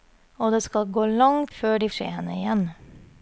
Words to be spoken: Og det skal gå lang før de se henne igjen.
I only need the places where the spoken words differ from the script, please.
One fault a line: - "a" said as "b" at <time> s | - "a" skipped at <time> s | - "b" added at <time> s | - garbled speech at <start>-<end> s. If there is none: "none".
none